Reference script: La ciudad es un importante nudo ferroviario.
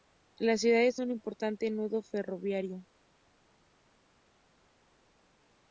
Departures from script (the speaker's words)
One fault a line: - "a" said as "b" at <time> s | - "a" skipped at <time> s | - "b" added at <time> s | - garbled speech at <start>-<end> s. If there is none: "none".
none